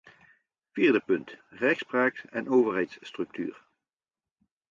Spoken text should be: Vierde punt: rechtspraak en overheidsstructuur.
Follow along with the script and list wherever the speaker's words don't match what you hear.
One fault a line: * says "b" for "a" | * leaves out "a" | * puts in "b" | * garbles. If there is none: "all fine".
all fine